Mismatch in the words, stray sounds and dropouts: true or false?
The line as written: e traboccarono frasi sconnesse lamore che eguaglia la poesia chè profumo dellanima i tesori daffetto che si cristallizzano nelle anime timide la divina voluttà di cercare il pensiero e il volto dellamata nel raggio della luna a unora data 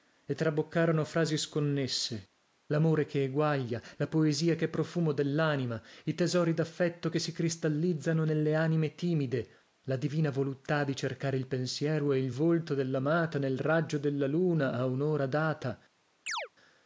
true